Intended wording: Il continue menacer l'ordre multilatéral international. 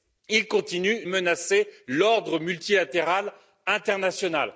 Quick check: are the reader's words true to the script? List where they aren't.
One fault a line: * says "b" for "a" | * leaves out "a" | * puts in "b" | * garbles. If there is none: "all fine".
all fine